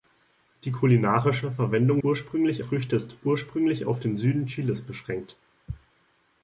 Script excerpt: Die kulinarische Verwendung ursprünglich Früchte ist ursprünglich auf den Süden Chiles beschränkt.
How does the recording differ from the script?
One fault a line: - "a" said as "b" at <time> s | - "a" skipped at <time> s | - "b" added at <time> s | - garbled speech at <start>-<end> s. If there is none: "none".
none